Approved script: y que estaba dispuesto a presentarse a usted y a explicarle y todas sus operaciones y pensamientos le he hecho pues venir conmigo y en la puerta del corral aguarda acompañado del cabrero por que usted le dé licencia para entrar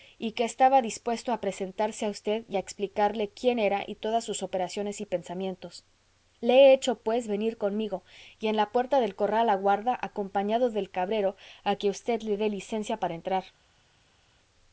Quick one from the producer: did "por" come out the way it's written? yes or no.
no